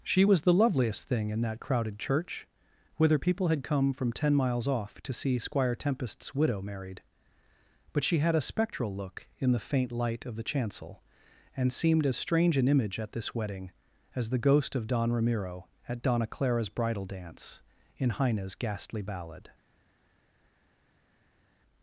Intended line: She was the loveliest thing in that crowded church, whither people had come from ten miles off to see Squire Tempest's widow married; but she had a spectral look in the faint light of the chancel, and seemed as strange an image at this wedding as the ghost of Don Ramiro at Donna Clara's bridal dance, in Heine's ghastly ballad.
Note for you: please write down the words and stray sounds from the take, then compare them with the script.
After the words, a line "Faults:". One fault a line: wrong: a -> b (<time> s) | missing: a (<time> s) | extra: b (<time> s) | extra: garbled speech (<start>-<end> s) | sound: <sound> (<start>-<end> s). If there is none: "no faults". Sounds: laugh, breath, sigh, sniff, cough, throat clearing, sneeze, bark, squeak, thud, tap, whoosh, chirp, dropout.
She was the loveliest thing in that crowded church, whither people had come from ten miles off to see Squire Tempest's widow married; but she had a spectral look in the faint light of the chancel, and seemed as strange an image at this wedding as the ghost of Don Ramiro at Donna Clara's bridal dance, in Heine's ghastly ballad.
Faults:
no faults